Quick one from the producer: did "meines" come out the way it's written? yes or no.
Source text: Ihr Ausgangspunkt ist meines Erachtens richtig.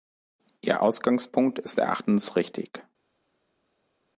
no